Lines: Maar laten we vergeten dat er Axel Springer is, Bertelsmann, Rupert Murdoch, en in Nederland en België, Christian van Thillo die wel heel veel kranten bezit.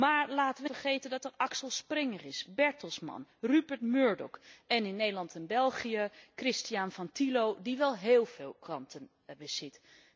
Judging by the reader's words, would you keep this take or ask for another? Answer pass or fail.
pass